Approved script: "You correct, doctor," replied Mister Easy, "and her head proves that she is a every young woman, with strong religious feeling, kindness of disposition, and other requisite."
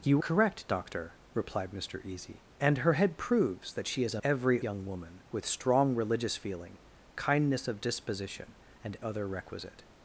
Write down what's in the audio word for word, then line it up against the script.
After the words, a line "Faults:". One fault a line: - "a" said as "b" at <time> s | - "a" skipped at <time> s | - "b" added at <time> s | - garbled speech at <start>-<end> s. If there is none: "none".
"You correct, doctor," replied Mister Easy, "and her head proves that she is a every young woman, with strong religious feeling, kindness of disposition, and other requisite."
Faults:
none